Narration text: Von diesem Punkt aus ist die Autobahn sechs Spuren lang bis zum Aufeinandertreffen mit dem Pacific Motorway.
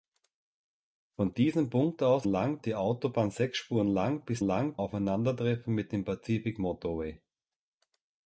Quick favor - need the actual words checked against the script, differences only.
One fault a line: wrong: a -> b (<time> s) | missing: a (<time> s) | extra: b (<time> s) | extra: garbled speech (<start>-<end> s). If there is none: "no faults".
wrong: ist -> lang (2.2 s)
wrong: zum -> lang (4.4 s)